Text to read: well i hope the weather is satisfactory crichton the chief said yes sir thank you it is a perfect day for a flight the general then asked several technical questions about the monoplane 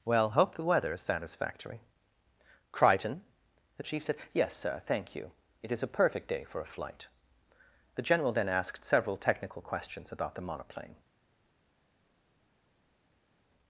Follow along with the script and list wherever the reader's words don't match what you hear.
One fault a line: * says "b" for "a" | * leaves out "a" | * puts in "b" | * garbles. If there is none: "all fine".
* leaves out "i"